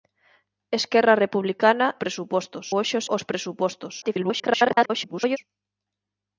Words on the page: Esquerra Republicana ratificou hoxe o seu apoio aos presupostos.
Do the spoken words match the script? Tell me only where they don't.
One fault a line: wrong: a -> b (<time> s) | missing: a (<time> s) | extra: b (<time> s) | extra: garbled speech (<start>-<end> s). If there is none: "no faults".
wrong: ratificou -> presupostos (2.0 s)
missing: seu apoio (3.1 s)
extra: garbled speech (4.0-5.4 s)